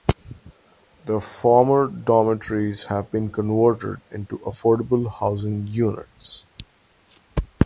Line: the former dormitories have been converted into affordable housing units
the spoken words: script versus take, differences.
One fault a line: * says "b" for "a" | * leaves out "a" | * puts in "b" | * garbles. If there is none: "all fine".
all fine